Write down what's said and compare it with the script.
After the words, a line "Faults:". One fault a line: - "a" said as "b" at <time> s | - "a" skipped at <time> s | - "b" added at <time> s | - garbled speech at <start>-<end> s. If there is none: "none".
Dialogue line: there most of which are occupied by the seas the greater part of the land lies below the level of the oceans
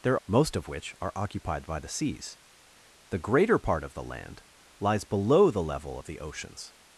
there most of which are occupied by the seas the greater part of the land lies below the level of the oceans
Faults:
none